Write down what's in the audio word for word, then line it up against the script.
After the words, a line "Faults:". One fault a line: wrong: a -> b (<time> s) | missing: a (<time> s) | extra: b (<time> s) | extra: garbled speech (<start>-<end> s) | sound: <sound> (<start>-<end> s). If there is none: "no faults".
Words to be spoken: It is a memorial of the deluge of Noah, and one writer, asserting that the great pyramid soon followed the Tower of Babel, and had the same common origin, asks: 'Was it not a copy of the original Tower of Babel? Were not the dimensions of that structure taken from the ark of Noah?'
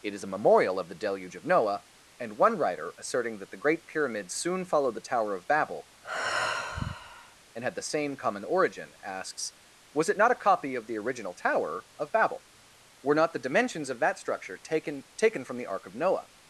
It is a memorial of the deluge of Noah, and one writer, asserting that the great pyramid soon followed the Tower of Babel, and had the same common origin, asks: 'Was it not a copy of the original Tower of Babel? Were not the dimensions of that structure taken taken from the ark of Noah?'
Faults:
sound: sigh (6.0-7.4 s)
extra: taken (15.2 s)